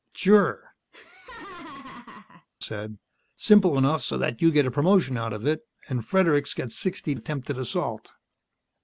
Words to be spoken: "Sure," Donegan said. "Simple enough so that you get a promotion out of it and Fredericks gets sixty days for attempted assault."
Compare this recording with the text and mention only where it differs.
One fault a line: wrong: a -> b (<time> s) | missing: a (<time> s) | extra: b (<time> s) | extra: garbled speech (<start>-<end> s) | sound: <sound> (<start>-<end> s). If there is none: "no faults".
missing: Donegan (0.7 s)
sound: laugh (0.9-2.5 s)
missing: days for (7.2 s)